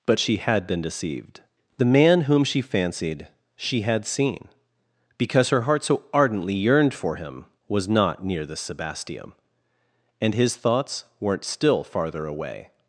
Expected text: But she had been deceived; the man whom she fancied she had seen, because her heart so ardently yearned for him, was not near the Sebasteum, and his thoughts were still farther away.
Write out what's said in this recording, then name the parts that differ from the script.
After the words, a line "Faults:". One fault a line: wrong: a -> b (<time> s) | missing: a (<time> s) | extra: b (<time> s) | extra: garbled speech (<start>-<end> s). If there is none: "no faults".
But she had been deceived; the man whom she fancied she had seen, because her heart so ardently yearned for him, was not near the Sebasteum, and his thoughts weren't still farther away.
Faults:
wrong: were -> weren't (11.2 s)